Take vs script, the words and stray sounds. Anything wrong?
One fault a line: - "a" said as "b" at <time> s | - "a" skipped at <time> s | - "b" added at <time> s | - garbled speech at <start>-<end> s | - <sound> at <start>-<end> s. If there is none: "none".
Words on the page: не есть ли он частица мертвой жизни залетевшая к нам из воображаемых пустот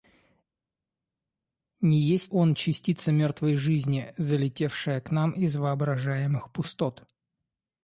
- "ли" skipped at 2.3 s